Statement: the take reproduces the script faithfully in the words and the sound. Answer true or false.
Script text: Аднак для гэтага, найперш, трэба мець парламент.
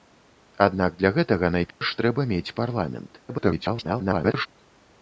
false